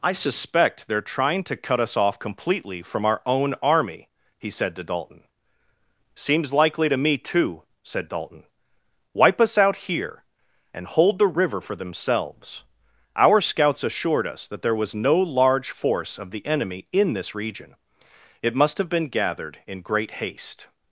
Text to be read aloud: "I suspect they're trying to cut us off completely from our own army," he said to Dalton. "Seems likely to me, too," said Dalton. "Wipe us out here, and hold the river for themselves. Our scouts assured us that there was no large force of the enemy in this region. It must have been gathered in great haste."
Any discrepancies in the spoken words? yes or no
no